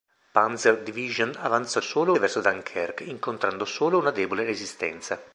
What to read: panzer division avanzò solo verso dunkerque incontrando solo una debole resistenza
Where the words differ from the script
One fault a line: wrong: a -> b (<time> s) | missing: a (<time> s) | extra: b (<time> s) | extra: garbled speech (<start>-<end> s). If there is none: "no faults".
no faults